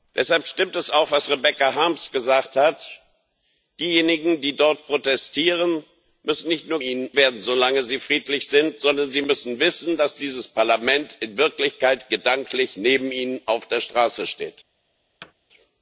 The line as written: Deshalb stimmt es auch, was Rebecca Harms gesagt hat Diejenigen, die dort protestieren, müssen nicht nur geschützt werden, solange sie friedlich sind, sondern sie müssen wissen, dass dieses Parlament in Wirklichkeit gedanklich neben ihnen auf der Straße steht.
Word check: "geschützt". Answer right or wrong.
wrong